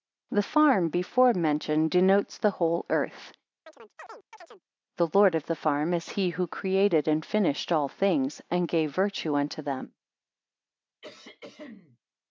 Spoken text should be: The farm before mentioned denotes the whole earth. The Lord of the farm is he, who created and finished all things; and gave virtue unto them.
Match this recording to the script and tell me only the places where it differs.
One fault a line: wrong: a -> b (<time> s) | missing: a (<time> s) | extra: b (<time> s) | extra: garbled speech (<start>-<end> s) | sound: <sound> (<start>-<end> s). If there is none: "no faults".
sound: chirp (3.7-4.6 s)
sound: throat clearing (11.0-12.0 s)